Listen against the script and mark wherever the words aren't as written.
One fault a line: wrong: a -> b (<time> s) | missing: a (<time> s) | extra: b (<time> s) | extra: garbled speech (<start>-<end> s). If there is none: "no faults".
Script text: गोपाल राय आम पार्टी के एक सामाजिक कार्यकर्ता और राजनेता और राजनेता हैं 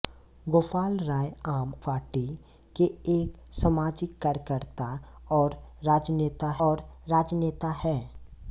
no faults